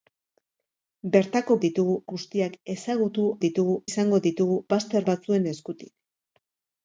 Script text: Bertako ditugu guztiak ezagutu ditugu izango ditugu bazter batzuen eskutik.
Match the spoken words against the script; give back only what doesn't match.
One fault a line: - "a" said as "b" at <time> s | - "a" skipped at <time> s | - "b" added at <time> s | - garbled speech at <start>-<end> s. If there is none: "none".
none